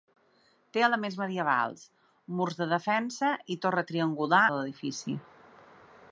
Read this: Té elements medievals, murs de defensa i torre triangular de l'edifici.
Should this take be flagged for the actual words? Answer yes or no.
no